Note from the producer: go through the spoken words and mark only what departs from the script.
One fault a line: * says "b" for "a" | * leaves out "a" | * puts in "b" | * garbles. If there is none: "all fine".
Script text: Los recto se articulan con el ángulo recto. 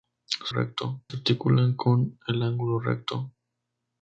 all fine